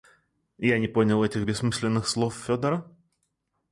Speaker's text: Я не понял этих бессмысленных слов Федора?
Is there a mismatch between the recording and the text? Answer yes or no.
no